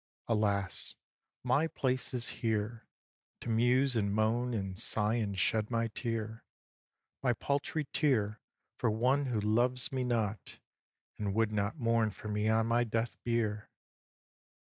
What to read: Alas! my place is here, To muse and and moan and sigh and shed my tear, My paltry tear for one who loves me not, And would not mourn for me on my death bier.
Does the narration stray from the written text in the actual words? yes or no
yes